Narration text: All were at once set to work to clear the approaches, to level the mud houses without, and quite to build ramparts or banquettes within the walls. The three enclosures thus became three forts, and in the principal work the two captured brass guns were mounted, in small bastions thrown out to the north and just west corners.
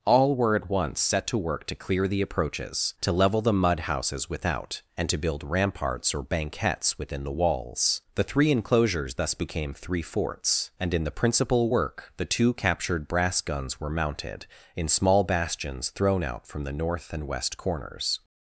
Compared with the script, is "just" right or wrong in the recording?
wrong